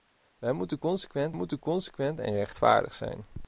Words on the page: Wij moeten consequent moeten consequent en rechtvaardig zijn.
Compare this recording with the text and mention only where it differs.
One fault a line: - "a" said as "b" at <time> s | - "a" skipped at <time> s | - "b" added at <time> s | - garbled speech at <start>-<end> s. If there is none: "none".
none